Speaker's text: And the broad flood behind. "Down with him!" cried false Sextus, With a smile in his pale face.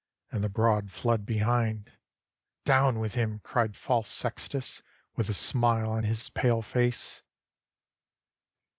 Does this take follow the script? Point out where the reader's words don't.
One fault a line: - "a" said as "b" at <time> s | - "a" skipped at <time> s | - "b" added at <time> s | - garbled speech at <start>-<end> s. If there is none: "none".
- "in" said as "on" at 5.9 s